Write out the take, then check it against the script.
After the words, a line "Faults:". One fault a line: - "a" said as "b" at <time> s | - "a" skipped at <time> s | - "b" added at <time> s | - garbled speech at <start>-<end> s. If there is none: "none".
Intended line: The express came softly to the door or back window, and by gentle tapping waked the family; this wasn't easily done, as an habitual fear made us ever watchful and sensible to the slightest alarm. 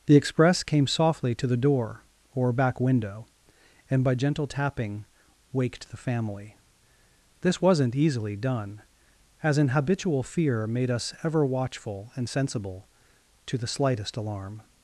The express came softly to the door or back window, and by gentle tapping waked the family; this wasn't easily done, as an habitual fear made us ever watchful and sensible to the slightest alarm.
Faults:
none